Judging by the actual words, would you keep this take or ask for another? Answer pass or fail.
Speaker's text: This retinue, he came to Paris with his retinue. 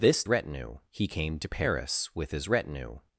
pass